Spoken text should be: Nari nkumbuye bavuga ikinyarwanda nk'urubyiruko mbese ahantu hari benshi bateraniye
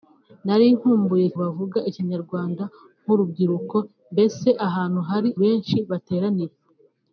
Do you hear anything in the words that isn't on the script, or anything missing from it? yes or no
no